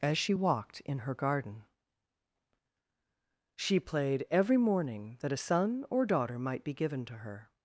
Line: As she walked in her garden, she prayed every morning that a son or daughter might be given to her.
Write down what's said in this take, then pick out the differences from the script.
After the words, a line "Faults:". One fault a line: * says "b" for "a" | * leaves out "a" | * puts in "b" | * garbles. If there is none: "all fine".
As she walked in her garden, she played every morning that a son or daughter might be given to her.
Faults:
* says "played" for "prayed"